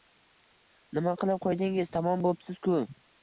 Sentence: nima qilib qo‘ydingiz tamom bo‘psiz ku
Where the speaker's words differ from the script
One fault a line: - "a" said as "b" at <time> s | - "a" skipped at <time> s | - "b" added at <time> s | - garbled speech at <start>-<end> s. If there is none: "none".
none